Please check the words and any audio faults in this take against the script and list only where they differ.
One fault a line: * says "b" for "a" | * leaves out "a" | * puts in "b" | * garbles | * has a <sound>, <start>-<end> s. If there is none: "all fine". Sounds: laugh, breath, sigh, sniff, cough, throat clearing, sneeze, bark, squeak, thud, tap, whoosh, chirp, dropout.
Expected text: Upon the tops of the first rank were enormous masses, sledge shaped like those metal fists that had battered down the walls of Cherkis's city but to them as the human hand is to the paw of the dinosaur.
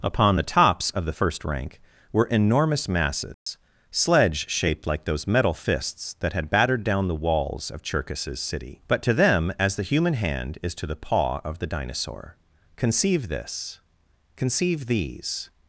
* has a dropout, 3.3-3.5 s
* puts in "Conceive this conceive these"